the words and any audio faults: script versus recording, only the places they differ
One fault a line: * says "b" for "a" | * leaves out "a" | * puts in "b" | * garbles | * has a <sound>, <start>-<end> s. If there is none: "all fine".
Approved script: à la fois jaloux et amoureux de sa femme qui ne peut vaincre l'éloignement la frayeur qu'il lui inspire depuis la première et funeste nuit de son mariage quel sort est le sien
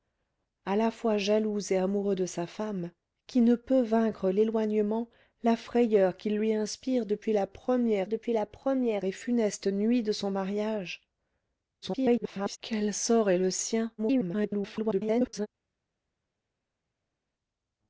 * puts in "depuis la première"
* garbles
* garbles